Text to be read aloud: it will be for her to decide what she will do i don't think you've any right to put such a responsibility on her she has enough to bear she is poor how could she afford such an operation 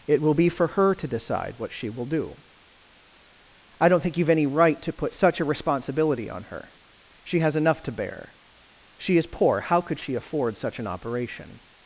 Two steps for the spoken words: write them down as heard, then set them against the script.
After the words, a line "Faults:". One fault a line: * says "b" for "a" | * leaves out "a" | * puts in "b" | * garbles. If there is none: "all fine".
it will be for her to decide what she will do i don't think you've any right to put such a responsibility on her she has enough to bear she is poor how could she afford such an operation
Faults:
all fine